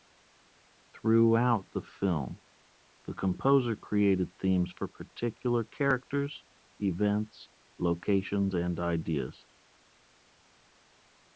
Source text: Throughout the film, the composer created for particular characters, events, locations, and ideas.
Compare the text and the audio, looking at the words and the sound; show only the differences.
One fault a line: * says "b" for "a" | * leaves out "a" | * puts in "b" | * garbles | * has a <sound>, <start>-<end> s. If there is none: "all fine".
* puts in "themes"